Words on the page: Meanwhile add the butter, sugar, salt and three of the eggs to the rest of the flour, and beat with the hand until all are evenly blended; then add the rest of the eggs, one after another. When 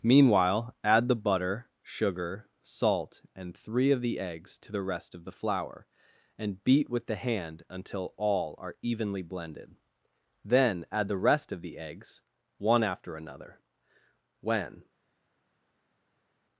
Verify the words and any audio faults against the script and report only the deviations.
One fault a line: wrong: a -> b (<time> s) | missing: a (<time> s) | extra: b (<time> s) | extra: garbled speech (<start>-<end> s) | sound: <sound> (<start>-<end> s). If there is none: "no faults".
no faults